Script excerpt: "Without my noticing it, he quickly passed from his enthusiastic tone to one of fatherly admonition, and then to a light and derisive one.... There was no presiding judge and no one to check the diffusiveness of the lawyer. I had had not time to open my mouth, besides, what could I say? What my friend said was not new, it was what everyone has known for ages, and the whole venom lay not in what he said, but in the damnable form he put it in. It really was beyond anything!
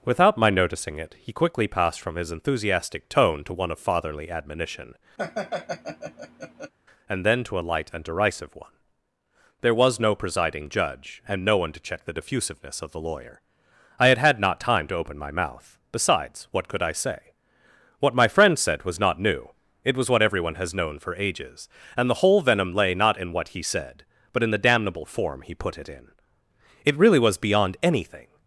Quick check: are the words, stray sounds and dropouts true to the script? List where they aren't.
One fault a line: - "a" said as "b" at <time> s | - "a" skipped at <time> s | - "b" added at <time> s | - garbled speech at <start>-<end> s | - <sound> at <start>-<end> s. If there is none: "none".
- laugh at 5.2-6.7 s